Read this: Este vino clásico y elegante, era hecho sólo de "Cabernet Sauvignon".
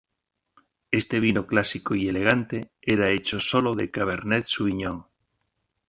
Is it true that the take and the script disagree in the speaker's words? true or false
false